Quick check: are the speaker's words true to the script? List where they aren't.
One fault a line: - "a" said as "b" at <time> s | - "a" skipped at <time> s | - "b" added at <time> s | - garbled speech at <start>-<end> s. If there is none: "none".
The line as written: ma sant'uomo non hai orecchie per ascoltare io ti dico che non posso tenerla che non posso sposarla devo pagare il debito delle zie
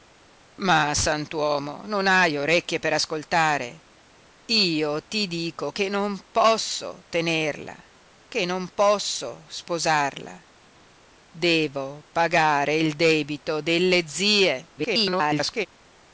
- garbled speech at 14.8-15.7 s